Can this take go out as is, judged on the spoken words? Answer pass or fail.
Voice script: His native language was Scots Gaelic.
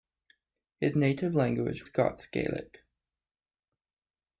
fail